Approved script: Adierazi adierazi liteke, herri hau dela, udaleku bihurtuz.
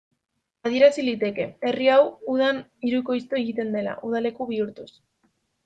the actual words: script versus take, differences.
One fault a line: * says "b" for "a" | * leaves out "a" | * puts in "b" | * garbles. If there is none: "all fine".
* leaves out "adierazi"
* puts in "udan hirukoiztu egiten"